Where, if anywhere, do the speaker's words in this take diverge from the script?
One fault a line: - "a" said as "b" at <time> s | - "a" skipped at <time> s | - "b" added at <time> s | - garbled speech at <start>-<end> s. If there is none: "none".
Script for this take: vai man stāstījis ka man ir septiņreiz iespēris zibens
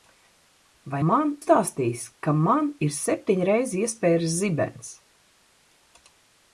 none